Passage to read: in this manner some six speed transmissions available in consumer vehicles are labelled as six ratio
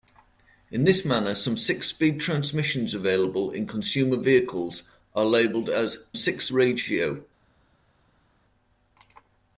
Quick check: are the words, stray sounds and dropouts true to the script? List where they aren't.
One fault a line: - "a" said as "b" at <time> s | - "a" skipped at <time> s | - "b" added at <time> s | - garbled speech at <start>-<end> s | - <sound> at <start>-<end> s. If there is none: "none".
none